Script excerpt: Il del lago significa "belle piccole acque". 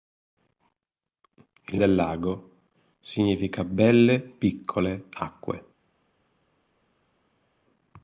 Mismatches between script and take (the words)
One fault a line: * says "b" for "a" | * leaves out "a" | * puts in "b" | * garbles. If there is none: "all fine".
all fine